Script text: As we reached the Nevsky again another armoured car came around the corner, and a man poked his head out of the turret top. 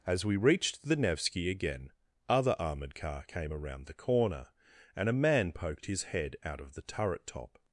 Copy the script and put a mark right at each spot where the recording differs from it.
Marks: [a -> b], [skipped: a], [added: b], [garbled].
As we reached the Nevsky again [another -> other] armoured car came around the corner, and a man poked his head out of the turret top.